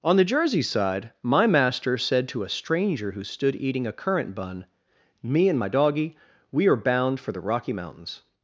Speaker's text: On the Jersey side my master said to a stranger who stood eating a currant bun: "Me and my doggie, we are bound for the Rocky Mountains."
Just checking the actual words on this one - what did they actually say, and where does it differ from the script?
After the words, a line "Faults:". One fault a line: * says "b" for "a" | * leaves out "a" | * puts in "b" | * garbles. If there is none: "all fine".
On the Jersey side my master said to a stranger who stood eating a currant bun: "Me and my doggie, we are bound for the Rocky Mountains."
Faults:
all fine